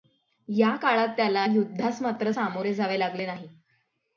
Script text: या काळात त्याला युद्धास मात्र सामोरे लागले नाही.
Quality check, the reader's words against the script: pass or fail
fail